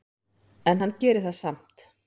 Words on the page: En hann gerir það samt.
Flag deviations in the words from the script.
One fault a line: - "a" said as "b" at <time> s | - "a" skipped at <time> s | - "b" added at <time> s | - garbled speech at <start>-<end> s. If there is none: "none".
none